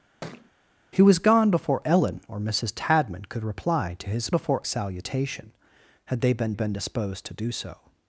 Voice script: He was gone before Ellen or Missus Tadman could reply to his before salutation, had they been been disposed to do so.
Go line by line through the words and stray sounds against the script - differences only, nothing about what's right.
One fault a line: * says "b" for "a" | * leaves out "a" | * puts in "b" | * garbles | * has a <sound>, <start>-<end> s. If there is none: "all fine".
* has a thud, 0.2-0.5 s